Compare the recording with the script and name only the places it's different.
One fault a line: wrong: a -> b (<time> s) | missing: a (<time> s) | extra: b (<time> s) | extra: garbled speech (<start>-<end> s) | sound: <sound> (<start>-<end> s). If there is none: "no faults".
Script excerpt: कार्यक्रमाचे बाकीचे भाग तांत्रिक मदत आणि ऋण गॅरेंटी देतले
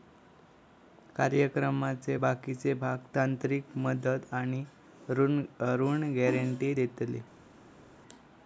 no faults